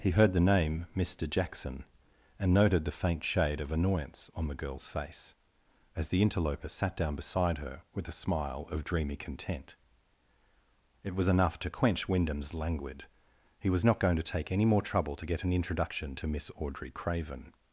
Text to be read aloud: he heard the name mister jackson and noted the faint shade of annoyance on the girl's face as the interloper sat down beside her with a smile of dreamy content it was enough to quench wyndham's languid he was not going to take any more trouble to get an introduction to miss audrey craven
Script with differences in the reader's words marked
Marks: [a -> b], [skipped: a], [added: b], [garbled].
he heard the name mister jackson and noted the faint shade of annoyance on the girl's face as the interloper sat down beside her with a smile of dreamy content it was enough to quench wyndham's languid he was not going to take any more trouble to get an introduction to miss audrey craven